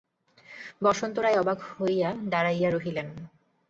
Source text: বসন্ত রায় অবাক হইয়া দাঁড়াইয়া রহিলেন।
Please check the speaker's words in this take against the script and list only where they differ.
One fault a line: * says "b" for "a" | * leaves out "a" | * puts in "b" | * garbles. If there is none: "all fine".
all fine